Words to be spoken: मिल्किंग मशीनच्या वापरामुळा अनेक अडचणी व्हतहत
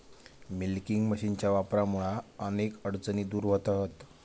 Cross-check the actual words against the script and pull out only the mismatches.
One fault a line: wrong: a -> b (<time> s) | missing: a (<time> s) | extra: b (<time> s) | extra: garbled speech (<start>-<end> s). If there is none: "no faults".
extra: दूर (3.2 s)